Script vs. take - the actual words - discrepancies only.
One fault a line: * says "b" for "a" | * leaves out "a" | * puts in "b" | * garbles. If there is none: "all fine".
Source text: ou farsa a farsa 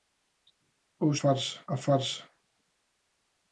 all fine